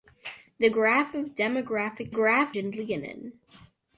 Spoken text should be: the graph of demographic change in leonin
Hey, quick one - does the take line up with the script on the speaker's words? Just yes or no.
no